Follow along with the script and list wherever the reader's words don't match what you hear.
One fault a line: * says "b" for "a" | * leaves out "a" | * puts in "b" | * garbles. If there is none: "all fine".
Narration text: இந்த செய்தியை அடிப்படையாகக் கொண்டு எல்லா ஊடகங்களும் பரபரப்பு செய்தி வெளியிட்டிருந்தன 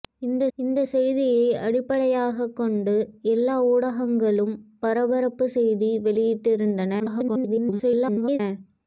* puts in "இந்த"
* garbles